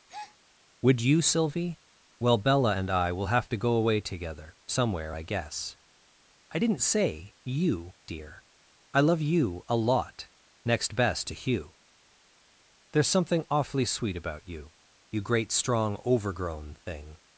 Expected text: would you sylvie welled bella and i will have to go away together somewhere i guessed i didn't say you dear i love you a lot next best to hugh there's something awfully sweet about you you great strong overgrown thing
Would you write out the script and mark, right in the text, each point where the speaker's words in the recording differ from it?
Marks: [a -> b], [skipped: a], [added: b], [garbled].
would you sylvie [welled -> well] bella and i will have to go away together somewhere i [guessed -> guess] i didn't say you dear i love you a lot next best to hugh there's something awfully sweet about you you great strong overgrown thing